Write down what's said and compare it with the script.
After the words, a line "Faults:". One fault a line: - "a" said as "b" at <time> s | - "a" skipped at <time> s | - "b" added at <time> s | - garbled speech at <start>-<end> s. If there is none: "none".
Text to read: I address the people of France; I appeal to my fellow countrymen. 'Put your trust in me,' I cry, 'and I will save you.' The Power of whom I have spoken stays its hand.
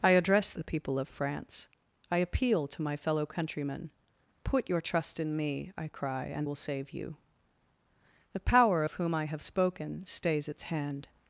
I address the people of France; I appeal to my fellow countrymen. 'Put your trust in me,' I cry, 'and will save you.' The Power of whom I have spoken stays its hand.
Faults:
- "I" skipped at 6.5 s